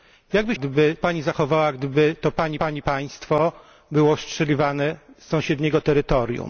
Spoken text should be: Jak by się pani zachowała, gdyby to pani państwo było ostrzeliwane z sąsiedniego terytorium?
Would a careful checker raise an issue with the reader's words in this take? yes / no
yes